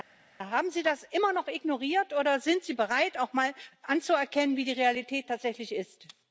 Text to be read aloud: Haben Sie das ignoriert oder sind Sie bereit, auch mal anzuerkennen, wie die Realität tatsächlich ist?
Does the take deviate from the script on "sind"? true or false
false